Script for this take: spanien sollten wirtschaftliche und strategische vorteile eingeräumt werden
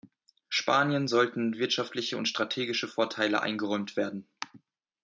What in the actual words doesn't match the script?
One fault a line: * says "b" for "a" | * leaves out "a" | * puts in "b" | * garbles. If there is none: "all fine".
all fine